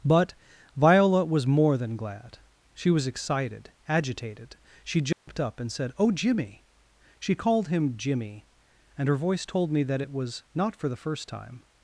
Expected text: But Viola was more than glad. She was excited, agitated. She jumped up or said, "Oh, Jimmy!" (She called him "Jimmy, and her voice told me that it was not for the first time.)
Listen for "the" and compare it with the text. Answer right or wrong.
right